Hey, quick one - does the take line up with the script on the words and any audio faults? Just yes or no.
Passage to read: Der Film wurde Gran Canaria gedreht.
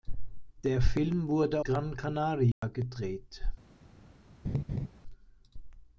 no